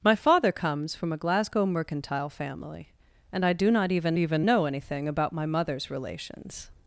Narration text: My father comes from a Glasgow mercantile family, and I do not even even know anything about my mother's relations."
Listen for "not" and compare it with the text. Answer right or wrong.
right